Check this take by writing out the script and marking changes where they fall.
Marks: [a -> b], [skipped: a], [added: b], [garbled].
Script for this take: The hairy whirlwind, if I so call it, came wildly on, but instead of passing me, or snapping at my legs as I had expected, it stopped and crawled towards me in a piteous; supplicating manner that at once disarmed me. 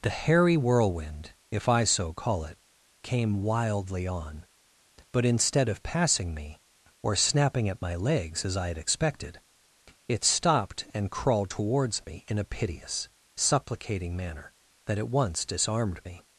The hairy whirlwind, if I so call it, came wildly on, but instead of passing me, or snapping at my legs as I had expected, it stopped and crawled towards me in a piteous; supplicating manner that at once disarmed me.